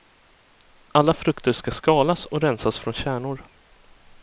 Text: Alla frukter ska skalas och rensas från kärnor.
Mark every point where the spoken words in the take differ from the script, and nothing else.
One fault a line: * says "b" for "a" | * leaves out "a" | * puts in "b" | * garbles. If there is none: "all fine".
all fine